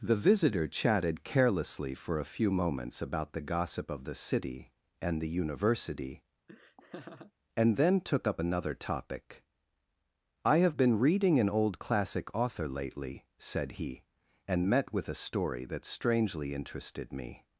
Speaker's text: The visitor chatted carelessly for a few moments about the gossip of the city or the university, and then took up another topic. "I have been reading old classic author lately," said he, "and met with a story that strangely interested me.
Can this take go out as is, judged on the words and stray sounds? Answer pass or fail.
fail